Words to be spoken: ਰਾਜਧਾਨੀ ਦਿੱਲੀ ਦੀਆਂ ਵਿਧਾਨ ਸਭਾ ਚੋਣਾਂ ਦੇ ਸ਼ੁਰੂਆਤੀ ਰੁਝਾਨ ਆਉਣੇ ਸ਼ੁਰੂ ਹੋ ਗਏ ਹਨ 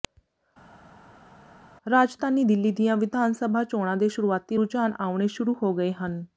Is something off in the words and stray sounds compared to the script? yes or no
no